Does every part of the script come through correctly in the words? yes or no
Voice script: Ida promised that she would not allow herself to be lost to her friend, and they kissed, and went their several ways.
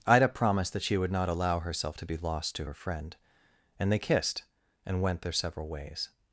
yes